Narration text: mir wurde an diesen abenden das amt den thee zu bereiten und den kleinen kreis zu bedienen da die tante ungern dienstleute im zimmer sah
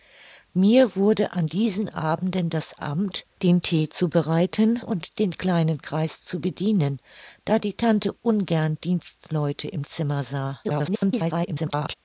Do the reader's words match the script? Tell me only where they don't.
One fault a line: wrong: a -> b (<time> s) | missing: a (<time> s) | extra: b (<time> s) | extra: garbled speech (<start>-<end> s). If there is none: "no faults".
extra: garbled speech (10.6-11.9 s)